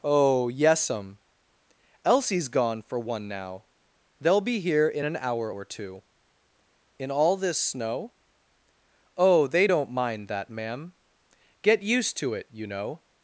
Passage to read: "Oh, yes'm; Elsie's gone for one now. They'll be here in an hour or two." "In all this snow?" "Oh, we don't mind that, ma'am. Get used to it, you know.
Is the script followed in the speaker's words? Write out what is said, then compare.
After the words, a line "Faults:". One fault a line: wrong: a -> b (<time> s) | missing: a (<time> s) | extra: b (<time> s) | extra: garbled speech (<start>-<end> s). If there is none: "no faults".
"Oh, yes'm; Elsie's gone for one now. They'll be here in an hour or two." "In all this snow?" "Oh, they don't mind that, ma'am. Get used to it, you know.
Faults:
wrong: we -> they (9.5 s)